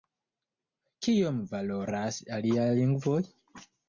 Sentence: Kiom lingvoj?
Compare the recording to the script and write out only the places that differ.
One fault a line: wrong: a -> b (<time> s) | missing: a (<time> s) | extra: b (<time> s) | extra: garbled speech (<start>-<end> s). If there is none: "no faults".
extra: valoras aliaj (1.5 s)